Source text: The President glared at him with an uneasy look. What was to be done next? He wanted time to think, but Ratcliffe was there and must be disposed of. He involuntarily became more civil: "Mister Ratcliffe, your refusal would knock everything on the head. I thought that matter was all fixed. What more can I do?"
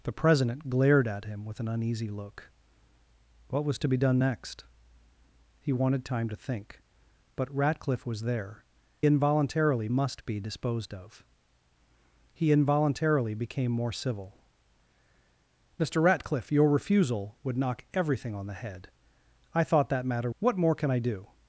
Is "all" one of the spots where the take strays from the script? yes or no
yes